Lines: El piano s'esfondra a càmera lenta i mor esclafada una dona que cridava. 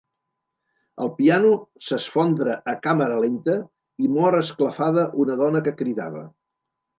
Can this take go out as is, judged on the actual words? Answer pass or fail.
pass